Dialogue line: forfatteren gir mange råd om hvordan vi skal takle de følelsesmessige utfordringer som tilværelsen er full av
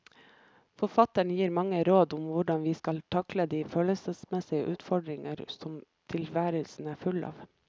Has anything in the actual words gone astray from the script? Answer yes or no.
no